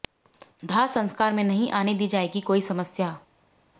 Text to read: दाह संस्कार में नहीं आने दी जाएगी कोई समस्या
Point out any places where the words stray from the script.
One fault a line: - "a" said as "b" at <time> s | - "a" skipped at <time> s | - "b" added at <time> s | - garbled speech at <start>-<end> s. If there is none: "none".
none